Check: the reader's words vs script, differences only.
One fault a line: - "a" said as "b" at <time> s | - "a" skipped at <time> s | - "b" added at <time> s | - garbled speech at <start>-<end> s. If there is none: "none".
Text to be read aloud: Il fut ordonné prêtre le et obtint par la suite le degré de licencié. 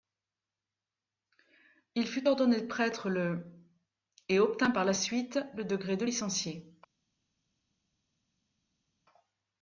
none